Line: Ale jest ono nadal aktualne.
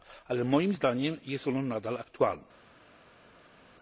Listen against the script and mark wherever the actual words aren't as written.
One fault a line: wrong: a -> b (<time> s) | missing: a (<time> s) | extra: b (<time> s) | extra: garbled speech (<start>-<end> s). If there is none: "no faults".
extra: moim zdaniem (0.4 s)